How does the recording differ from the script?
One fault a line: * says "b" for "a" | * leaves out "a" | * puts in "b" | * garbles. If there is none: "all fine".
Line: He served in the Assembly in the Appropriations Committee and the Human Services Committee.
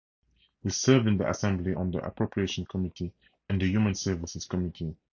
* says "on" for "in"